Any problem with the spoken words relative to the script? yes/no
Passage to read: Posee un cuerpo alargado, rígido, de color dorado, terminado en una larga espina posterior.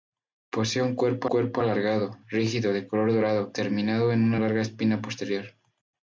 yes